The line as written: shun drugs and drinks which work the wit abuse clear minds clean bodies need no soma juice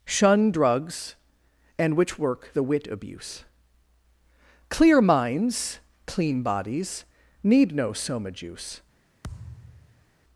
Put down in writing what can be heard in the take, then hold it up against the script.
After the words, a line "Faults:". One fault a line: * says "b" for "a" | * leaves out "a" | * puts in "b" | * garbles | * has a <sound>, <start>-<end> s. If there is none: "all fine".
shun drugs and which work the wit abuse clear minds clean bodies need no soma juice
Faults:
* leaves out "drinks"
* has a thud, 9.2-10.1 s